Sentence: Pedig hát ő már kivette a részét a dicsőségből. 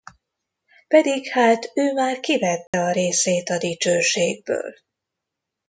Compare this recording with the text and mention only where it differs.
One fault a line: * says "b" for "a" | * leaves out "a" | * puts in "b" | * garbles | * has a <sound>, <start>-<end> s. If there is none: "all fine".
* has a dropout, 2.7-2.7 s